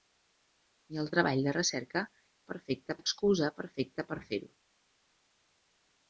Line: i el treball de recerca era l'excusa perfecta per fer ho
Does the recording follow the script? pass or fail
fail